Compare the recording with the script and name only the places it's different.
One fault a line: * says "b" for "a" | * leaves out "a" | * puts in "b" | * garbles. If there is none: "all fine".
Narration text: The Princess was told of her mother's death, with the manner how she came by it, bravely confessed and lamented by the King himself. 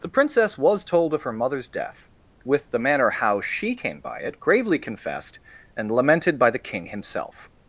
* says "gravely" for "bravely"